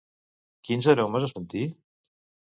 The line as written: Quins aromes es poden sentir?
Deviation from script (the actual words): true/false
true